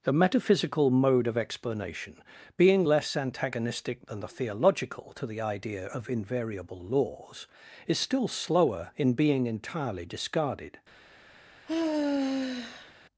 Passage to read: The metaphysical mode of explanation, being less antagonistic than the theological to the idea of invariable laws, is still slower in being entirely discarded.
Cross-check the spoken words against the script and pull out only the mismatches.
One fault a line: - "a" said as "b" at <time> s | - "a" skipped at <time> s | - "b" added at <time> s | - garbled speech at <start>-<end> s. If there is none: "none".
none